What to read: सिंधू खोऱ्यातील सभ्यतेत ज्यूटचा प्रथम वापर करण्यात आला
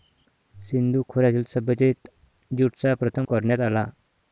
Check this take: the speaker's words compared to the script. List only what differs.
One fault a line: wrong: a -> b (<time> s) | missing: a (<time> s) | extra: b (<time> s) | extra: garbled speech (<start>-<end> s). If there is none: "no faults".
missing: वापर (3.3 s)